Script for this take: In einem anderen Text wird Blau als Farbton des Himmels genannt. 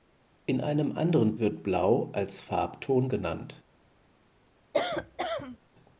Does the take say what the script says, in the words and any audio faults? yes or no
no